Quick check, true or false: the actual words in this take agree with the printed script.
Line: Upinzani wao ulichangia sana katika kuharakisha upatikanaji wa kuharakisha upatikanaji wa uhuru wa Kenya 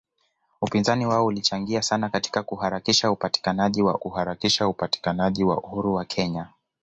true